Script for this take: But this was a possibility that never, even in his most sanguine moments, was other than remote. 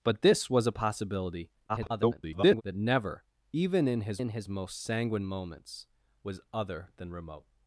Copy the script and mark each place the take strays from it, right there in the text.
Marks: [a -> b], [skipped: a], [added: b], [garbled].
But this was a possibility [garbled] that never, even in his [added: in his] most sanguine moments, was other than remote.